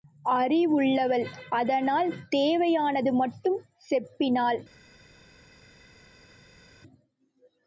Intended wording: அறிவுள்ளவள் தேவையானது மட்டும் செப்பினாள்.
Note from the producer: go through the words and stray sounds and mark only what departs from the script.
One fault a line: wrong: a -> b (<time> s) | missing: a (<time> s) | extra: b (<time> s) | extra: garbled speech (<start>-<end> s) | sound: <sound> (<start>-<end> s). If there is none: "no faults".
extra: அதனால் (1.5 s)